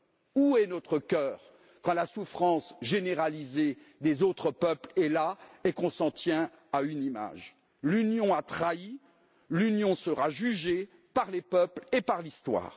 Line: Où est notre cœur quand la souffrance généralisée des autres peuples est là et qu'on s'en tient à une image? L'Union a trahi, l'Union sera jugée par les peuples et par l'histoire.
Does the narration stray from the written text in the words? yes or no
no